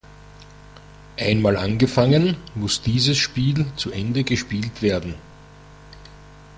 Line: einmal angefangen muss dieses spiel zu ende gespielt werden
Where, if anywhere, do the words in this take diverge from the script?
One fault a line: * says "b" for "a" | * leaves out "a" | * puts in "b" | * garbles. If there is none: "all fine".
all fine